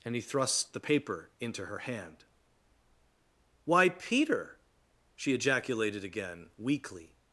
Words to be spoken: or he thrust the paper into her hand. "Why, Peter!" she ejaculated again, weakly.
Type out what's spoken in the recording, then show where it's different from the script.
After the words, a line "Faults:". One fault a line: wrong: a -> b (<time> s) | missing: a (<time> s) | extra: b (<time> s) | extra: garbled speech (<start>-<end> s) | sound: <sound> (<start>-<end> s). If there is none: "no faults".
and he thrust the paper into her hand. "Why, Peter!" she ejaculated again, weakly.
Faults:
wrong: or -> and (0.0 s)